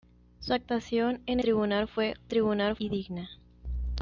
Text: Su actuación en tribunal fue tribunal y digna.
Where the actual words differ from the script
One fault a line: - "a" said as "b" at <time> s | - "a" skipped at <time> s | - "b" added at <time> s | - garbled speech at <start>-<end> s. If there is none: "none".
none